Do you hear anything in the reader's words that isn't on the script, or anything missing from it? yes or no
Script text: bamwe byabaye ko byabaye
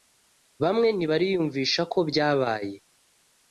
yes